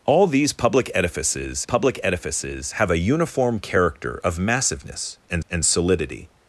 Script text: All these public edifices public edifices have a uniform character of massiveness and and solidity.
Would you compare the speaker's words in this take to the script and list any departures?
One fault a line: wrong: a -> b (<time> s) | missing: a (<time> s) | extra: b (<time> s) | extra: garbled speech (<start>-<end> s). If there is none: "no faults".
no faults